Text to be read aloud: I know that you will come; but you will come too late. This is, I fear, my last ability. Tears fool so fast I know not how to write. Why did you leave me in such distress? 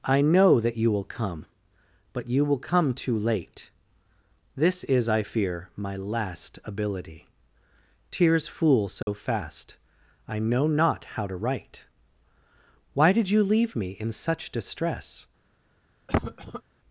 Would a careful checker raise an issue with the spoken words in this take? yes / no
no